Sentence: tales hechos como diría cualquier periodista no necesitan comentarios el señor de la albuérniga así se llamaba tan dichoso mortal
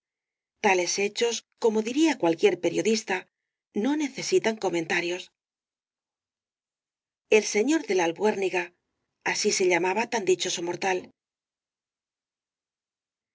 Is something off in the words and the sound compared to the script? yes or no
no